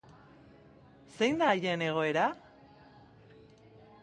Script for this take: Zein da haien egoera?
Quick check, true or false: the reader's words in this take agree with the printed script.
true